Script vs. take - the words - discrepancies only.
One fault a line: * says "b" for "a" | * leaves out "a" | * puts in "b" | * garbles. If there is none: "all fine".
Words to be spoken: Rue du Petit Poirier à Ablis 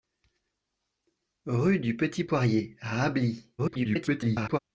* garbles